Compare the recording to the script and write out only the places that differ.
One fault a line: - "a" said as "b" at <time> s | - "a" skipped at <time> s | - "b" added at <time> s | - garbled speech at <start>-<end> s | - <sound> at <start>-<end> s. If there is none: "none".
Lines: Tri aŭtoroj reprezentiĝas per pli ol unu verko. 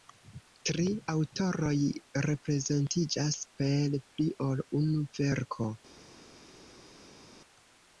none